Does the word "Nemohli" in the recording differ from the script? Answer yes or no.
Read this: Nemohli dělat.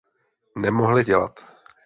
no